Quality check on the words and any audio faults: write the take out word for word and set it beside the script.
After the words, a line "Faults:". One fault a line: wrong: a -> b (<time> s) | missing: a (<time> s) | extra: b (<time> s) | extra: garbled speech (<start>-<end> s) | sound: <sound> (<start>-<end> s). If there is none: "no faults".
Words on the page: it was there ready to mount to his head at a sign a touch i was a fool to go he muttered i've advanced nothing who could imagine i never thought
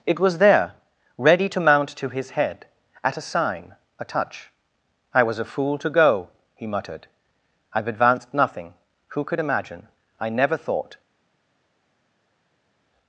it was there ready to mount to his head at a sign a touch i was a fool to go he muttered i've advanced nothing who could imagine i never thought
Faults:
no faults